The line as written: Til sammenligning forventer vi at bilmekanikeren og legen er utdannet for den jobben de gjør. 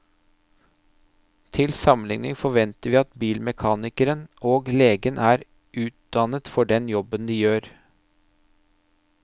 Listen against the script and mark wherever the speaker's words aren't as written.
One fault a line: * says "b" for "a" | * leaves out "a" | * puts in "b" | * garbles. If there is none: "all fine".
all fine